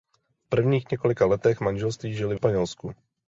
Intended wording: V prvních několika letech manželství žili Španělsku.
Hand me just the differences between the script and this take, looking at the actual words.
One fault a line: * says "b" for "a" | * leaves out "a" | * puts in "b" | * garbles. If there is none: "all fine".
all fine